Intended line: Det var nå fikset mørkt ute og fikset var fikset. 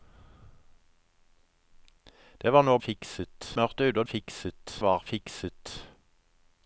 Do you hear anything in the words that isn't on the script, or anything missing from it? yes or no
no